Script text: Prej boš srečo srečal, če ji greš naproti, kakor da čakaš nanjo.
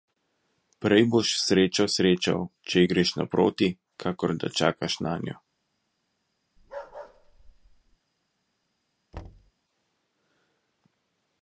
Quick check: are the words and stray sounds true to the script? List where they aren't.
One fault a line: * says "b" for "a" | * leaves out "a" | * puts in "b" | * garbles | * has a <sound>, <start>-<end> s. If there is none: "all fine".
* has a bark, 6.6-8.0 s
* has a thud, 9.1-9.5 s